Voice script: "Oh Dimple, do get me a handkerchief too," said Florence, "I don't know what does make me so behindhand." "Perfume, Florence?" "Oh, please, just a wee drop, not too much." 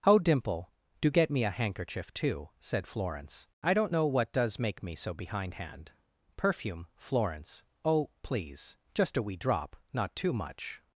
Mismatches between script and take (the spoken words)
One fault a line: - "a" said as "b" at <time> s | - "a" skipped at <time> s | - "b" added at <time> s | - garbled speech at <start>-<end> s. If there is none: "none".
none